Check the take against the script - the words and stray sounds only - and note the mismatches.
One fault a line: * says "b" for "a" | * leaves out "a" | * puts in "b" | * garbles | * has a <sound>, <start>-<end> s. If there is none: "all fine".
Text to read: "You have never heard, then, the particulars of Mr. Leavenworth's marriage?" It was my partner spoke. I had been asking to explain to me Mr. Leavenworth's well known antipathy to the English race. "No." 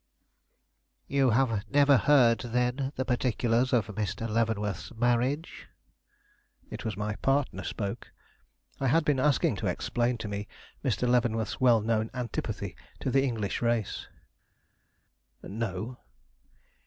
all fine